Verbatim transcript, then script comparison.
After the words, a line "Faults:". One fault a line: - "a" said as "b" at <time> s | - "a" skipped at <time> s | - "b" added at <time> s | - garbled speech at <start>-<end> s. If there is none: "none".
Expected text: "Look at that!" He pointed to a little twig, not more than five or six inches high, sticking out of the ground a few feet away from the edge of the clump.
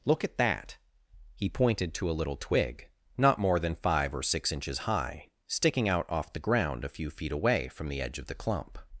"Look at that!" He pointed to a little twig, not more than five or six inches high, sticking out off the ground a few feet away from the edge of the clump.
Faults:
- "of" said as "off" at 6.1 s